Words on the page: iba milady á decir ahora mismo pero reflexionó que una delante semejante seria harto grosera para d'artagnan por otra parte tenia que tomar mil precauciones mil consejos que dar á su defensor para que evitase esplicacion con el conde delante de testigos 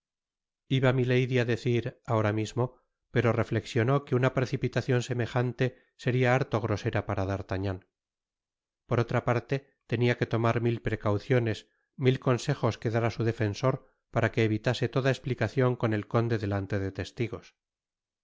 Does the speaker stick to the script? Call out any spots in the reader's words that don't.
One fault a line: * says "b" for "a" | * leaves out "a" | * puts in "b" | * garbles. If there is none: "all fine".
* says "precipitacion" for "delante"
* puts in "toda"